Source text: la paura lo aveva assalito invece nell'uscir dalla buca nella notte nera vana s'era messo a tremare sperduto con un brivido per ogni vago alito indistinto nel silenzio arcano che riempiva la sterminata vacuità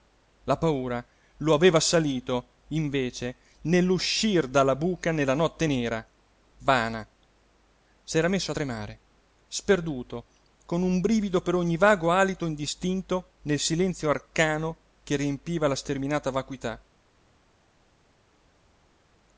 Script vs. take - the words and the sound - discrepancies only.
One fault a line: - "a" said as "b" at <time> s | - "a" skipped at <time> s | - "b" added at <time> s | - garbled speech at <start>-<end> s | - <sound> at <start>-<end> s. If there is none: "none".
none